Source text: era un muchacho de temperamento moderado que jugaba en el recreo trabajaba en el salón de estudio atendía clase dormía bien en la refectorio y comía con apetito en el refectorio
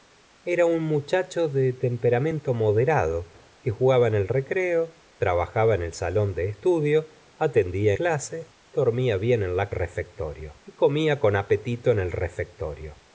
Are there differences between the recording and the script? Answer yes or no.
no